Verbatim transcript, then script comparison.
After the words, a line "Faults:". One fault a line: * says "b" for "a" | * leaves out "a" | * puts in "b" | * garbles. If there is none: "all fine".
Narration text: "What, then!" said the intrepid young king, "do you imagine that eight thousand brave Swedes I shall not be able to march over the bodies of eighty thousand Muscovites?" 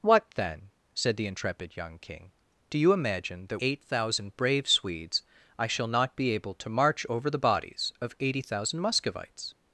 "What, then!" said the intrepid young king, "do you imagine that eight thousand brave Swedes I shall not be able to march over the bodies of eighty thousand Muscovites?"
Faults:
all fine